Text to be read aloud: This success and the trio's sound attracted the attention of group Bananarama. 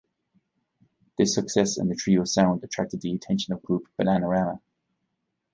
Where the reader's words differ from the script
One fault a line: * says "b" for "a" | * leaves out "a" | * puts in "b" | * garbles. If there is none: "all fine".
all fine